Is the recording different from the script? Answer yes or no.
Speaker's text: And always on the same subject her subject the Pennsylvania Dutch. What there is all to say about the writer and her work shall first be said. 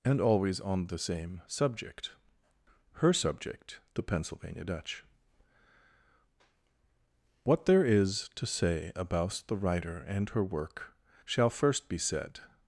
yes